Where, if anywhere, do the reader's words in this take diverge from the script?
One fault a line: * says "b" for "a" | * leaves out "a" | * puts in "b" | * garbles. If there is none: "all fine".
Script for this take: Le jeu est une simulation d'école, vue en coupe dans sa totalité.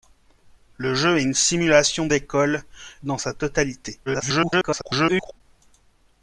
* leaves out "vue en coupe"
* garbles